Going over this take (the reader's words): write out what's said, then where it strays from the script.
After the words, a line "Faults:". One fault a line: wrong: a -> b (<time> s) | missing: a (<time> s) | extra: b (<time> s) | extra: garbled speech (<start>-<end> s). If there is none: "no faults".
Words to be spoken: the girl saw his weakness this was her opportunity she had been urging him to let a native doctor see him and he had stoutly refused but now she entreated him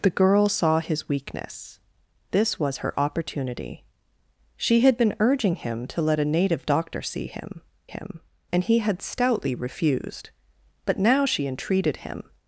the girl saw his weakness this was her opportunity she had been urging him to let a native doctor see him him and he had stoutly refused but now she entreated him
Faults:
extra: him (7.9 s)